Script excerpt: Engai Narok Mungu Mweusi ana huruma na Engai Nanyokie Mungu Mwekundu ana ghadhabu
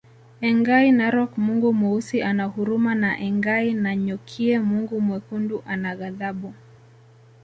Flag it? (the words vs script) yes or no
no